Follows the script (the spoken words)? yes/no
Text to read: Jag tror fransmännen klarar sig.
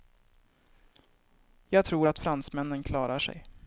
no